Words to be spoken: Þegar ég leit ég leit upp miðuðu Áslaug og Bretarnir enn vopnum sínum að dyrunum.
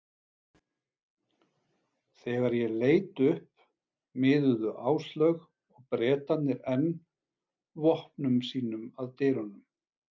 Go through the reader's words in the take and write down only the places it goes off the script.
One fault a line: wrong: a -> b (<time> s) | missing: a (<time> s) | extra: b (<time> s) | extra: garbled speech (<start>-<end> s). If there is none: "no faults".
missing: ég leit (3.2 s)